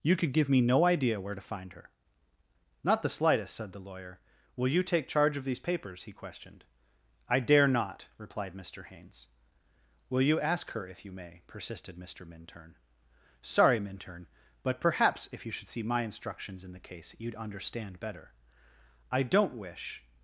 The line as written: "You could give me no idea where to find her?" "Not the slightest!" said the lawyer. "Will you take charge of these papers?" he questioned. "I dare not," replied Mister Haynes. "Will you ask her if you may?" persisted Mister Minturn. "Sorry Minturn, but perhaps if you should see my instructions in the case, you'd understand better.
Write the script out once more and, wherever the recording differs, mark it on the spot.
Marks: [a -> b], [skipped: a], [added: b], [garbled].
"You could give me no idea where to find her?" "Not the slightest!" said the lawyer. "Will you take charge of these papers?" he questioned. "I dare not," replied Mister Haynes. "Will you ask her if you may?" persisted Mister Minturn. "Sorry Minturn, but perhaps if you should see my instructions in the case, you'd understand better. [added: I don't wish]